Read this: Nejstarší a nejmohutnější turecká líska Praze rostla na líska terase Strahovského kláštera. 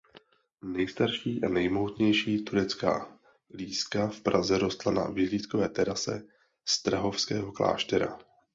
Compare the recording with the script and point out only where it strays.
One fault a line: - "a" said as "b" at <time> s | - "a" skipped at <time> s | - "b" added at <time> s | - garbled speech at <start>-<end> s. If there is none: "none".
- "v" added at 4.1 s
- "líska" said as "vyhlídkové" at 5.1 s